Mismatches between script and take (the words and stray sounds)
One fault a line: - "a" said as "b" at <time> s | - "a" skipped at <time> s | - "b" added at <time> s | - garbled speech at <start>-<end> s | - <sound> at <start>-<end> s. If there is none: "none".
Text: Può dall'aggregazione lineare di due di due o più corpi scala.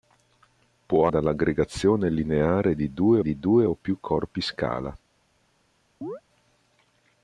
- chirp at 6.0-6.2 s